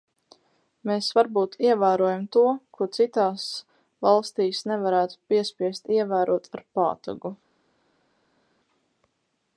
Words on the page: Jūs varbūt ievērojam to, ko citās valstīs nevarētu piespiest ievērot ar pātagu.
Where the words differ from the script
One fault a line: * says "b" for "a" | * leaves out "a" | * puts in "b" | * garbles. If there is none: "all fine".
* says "Mēs" for "Jūs"